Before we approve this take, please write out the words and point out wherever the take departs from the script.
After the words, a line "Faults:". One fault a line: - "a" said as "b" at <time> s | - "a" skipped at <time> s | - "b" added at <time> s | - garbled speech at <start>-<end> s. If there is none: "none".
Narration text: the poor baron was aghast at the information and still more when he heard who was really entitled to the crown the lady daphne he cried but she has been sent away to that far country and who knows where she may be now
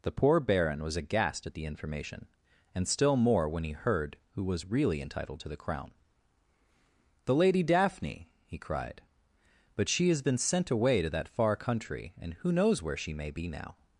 the poor baron was aghast at the information and still more when he heard who was really entitled to the crown the lady daphne he cried but she has been sent away to that far country and who knows where she may be now
Faults:
none